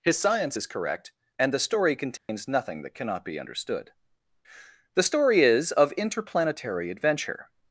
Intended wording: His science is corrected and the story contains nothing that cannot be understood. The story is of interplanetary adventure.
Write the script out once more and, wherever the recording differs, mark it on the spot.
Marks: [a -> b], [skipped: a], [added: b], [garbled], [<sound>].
His science is [corrected -> correct] and the story contains [dropout] nothing that cannot be understood. The story is of interplanetary adventure.